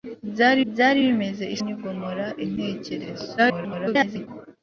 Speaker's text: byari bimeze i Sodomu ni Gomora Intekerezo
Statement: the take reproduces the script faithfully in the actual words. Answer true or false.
false